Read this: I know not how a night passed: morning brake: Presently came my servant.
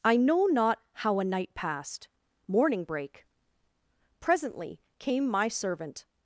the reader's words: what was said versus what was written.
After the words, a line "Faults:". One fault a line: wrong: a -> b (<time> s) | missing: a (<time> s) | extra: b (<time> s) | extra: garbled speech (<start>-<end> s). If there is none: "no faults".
I know not how a night passed: morning brake: Presently came my servant.
Faults:
no faults